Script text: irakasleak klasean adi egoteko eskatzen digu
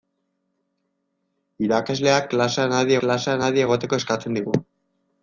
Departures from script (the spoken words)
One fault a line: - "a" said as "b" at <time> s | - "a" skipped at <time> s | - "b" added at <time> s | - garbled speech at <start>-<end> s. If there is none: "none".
- "klasean adi" added at 3.0 s